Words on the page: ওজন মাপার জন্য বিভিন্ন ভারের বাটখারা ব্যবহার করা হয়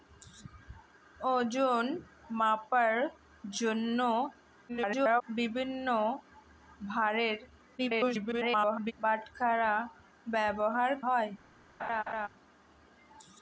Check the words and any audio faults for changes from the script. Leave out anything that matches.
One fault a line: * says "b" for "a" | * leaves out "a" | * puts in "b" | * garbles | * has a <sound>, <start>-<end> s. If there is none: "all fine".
* garbles
* garbles
* leaves out "করা"
* has a laugh, 11.8-12.3 s